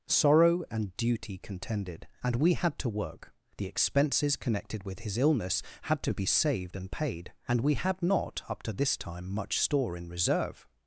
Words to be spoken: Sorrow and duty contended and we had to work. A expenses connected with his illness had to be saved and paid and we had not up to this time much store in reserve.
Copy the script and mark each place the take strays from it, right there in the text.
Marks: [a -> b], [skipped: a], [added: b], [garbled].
Sorrow and duty contended and we had to work. [A -> The] expenses connected with his illness had to be saved and paid and we had not up to this time much store in reserve.